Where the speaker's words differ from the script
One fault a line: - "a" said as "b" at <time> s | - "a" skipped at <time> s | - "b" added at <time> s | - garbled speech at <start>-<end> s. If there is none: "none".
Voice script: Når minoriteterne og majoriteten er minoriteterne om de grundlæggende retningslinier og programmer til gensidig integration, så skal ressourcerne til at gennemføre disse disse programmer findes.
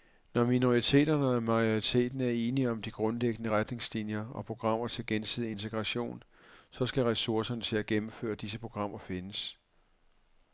- "minoriteterne" said as "enige" at 2.3 s
- "disse" skipped at 8.6 s